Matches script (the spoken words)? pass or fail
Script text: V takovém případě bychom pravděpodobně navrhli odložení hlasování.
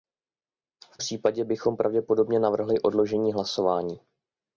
fail